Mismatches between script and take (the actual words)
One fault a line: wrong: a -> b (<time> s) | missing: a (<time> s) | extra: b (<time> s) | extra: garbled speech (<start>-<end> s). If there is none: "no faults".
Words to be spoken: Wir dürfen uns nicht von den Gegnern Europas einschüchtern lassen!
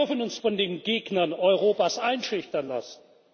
missing: nicht (0.4 s)